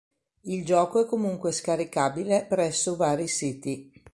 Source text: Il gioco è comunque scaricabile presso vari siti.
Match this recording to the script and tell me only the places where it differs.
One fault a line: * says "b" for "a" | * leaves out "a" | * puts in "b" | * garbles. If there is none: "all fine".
all fine